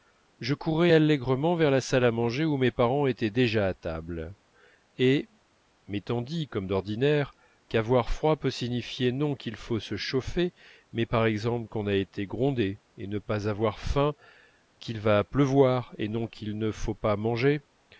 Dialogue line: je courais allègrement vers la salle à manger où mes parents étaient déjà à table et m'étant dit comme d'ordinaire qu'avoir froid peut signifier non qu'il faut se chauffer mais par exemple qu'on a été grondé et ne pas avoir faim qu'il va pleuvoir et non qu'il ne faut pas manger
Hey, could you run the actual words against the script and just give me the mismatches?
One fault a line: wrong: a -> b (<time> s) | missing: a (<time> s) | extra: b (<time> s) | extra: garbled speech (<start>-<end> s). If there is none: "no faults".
no faults